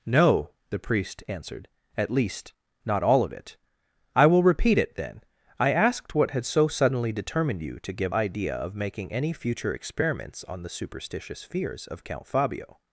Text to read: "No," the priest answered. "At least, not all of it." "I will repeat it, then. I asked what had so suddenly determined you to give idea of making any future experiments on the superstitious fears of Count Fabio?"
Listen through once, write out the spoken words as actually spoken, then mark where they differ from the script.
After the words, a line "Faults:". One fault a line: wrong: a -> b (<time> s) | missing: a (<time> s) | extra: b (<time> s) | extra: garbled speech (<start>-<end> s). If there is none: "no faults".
"No," the priest answered. "At least, not all of it." "I will repeat it, then. I asked what had so suddenly determined you to give idea of making any future experiments on the superstitious fears of Count Fabio?"
Faults:
no faults